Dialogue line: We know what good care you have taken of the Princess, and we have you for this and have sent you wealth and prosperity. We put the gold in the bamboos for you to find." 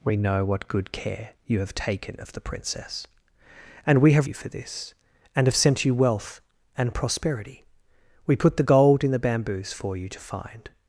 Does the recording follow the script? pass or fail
pass